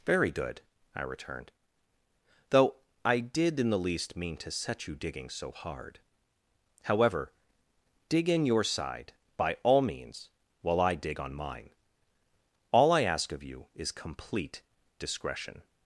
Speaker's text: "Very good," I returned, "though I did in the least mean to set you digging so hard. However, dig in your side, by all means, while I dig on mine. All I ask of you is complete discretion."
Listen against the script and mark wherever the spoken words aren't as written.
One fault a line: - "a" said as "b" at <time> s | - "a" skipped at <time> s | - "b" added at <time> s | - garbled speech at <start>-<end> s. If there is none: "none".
none